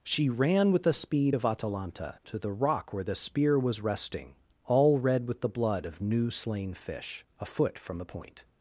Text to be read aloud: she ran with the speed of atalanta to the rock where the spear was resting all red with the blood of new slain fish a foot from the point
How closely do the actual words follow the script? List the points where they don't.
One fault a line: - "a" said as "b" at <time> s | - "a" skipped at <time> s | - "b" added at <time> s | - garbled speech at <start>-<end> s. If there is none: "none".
none